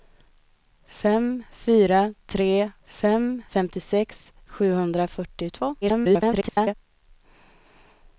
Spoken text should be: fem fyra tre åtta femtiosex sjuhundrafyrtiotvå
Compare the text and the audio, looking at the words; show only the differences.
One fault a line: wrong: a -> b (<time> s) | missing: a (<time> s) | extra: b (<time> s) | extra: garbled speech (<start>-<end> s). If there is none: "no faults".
wrong: åtta -> fem (2.9 s)
extra: garbled speech (5.8-6.7 s)